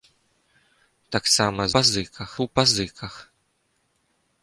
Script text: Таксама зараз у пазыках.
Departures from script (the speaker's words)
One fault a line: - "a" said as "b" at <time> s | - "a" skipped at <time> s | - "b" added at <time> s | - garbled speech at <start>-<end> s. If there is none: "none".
- "зараз" said as "пазыках" at 1.8 s